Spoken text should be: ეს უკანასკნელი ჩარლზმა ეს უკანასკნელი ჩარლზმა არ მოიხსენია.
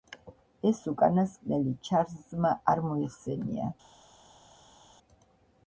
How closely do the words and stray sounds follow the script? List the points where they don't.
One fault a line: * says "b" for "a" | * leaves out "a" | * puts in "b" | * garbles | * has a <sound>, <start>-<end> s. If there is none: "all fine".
* leaves out "ეს უკანასკნელი ჩარლზმა"